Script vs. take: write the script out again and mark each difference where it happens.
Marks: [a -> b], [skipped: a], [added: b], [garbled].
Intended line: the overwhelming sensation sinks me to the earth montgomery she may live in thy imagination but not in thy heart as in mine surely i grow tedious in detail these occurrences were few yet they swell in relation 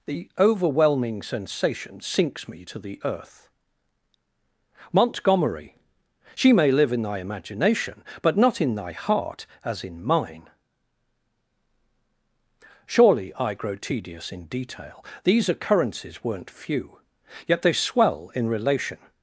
the overwhelming sensation sinks me to the earth montgomery she may live in thy imagination but not in thy heart as in mine surely i grow tedious in detail these occurrences [were -> weren't] few yet they swell in relation